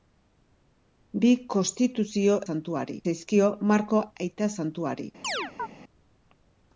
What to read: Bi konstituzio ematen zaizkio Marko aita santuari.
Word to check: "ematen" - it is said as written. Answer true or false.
false